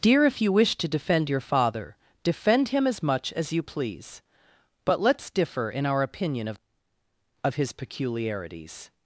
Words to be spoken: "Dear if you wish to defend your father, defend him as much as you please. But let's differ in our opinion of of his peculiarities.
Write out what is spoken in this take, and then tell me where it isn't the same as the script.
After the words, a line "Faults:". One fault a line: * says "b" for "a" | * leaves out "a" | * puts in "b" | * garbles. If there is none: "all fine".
"Dear if you wish to defend your father, defend him as much as you please. But let's differ in our opinion of of his peculiarities.
Faults:
all fine